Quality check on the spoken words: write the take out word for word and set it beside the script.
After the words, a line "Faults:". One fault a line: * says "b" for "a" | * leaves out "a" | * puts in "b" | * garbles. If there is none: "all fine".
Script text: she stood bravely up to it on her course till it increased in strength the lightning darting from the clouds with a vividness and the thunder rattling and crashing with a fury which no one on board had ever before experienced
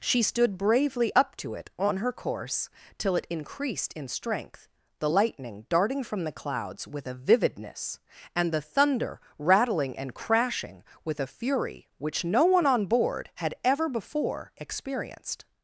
she stood bravely up to it on her course till it increased in strength the lightning darting from the clouds with a vividness and the thunder rattling and crashing with a fury which no one on board had ever before experienced
Faults:
all fine